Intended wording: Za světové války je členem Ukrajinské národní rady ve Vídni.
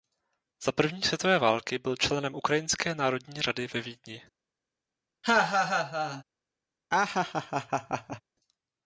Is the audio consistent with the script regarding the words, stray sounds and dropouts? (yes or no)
no